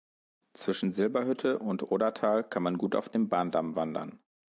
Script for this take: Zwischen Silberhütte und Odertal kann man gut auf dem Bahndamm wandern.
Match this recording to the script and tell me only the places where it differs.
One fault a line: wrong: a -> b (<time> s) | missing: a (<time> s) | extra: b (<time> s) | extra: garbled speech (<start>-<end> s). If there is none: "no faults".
no faults